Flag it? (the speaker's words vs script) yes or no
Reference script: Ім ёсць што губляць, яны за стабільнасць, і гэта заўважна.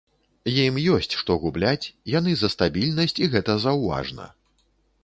no